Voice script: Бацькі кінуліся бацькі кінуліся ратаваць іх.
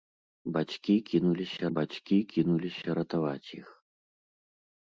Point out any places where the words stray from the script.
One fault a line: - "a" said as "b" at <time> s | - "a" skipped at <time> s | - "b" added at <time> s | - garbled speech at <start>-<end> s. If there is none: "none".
none